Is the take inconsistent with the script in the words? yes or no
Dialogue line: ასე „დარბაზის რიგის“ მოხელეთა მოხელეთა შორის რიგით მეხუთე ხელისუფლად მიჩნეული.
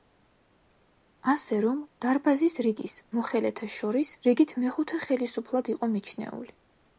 yes